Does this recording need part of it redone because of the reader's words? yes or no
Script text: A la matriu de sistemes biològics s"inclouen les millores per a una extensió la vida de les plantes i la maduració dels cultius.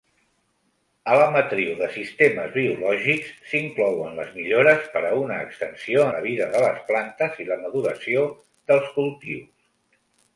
no